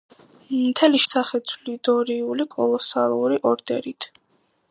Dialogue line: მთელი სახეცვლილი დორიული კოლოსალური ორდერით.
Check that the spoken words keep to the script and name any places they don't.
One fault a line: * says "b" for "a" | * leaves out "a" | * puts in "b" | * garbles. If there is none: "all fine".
all fine